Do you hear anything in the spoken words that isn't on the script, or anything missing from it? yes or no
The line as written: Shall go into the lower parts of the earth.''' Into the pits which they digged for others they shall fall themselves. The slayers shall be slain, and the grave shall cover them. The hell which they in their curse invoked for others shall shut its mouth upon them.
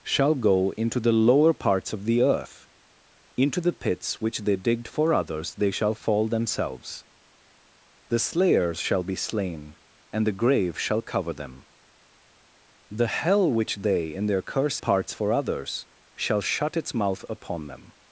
yes